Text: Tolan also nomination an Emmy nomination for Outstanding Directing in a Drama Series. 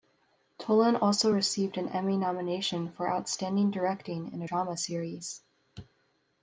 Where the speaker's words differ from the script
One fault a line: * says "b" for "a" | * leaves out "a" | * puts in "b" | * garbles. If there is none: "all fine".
* says "received" for "nomination"